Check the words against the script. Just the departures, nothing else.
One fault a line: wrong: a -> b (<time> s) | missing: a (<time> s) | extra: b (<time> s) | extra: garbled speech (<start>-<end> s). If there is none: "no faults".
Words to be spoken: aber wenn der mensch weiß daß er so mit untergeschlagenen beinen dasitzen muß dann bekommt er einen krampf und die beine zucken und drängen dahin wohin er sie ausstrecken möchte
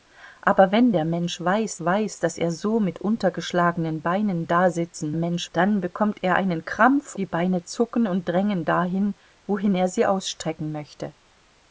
extra: weiß (1.8 s)
wrong: muß -> mensch (5.1 s)
missing: und (7.1 s)